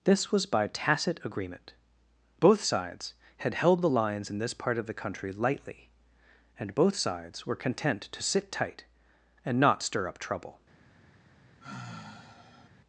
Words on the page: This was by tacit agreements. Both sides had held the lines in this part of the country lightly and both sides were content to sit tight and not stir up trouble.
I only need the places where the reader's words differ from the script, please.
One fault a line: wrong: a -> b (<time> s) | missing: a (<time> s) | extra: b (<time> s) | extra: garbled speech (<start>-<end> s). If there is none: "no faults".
wrong: agreements -> agreement (1.2 s)